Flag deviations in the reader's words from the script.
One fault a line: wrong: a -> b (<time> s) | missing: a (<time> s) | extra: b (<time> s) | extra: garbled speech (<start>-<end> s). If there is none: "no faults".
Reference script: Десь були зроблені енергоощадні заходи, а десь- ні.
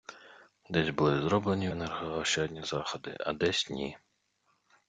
no faults